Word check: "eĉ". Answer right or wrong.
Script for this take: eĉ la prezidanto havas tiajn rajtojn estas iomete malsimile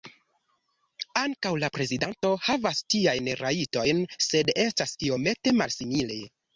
wrong